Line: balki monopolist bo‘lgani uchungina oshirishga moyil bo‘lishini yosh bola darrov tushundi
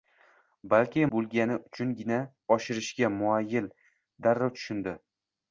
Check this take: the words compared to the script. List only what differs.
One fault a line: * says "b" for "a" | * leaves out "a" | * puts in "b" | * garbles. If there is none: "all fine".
* leaves out "monopolist"
* leaves out "bo‘lishini yosh bola"